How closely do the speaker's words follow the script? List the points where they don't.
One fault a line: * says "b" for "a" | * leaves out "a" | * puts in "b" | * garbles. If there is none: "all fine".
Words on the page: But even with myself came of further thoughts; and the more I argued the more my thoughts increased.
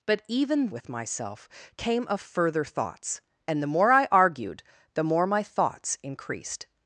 all fine